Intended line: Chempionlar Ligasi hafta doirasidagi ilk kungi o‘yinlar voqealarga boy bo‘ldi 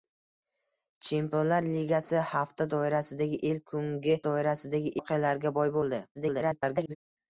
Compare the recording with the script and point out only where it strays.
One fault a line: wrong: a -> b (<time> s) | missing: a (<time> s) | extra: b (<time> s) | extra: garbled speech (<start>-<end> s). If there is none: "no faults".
wrong: o‘yinlar -> doirasidagi (4.3 s)
extra: garbled speech (6.1-7.0 s)